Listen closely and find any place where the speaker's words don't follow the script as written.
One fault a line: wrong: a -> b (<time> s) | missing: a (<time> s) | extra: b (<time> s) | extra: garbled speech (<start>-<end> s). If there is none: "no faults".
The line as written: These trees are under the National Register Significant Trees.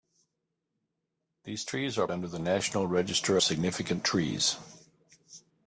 no faults